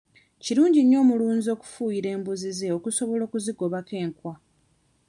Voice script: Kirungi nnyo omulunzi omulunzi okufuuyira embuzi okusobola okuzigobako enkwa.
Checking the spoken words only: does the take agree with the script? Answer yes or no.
no